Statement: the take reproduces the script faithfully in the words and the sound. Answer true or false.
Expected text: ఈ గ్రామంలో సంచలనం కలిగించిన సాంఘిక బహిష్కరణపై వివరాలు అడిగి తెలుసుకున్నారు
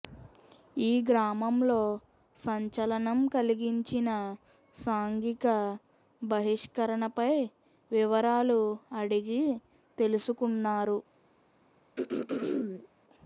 false